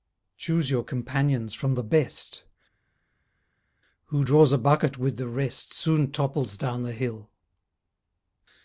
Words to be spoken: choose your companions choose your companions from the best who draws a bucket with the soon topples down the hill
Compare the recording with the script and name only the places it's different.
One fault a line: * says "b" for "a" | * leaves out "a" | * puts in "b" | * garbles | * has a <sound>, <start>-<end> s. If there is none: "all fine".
* leaves out "choose your companions"
* puts in "rest"